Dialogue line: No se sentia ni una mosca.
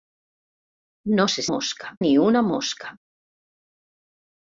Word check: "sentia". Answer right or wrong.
wrong